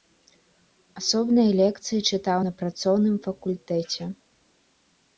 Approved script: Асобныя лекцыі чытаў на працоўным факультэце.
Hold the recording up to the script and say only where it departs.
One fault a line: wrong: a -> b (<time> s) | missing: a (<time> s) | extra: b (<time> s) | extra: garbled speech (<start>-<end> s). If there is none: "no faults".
no faults